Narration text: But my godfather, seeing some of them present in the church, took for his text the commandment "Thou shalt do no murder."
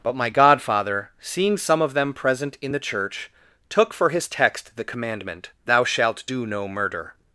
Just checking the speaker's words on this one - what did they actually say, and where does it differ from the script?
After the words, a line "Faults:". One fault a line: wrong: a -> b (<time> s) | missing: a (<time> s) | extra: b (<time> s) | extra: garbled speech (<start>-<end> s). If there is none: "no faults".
But my godfather, seeing some of them present in the church, took for his text the commandment "Thou shalt do no murder."
Faults:
no faults